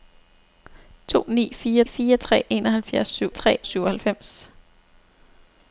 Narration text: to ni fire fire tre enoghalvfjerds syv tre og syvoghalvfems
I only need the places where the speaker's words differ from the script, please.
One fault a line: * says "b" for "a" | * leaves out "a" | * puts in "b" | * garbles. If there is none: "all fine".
all fine